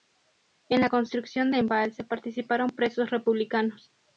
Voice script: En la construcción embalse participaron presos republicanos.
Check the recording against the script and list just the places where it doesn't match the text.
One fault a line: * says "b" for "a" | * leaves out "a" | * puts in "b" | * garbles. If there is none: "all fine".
all fine